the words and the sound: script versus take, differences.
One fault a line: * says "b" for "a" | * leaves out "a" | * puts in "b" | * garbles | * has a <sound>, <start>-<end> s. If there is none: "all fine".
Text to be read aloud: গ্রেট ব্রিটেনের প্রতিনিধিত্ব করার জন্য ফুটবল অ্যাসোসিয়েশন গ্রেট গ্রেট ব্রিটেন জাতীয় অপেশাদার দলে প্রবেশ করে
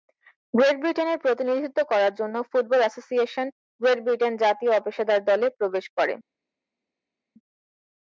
* leaves out "গ্রেট"